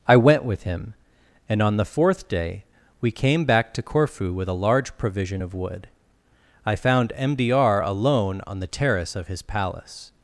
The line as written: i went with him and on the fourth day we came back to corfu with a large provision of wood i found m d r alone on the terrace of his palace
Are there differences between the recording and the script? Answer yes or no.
no